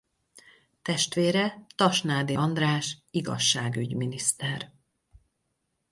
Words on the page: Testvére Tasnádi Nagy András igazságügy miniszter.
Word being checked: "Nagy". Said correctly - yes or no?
no